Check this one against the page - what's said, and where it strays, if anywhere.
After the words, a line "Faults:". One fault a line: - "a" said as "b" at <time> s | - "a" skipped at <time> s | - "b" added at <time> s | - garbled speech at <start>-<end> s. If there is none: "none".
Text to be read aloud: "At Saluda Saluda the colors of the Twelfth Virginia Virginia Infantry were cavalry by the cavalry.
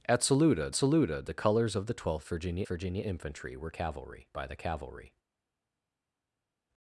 "At Saluda Saluda the colors of the Twelfth Virginia Virginia Infantry were cavalry by the cavalry.
Faults:
none